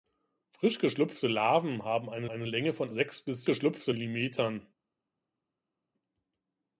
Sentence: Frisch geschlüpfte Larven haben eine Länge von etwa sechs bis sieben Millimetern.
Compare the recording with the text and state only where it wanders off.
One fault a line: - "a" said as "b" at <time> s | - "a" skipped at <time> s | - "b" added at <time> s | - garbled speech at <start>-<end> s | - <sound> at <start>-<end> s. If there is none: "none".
- "eine" added at 2.3 s
- "etwa" skipped at 2.9 s
- "sieben" said as "geschlüpfte" at 3.4 s